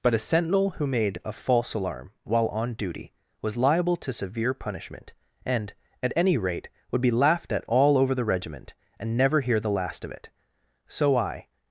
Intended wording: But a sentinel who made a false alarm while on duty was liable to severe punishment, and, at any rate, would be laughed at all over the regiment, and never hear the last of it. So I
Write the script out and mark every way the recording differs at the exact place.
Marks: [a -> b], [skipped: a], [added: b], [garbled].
But a sentinel who made a false alarm while on duty was liable to severe punishment, and, at any rate, would be laughed at all over the regiment, and never hear the last of it. So I